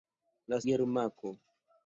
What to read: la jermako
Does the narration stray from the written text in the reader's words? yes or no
no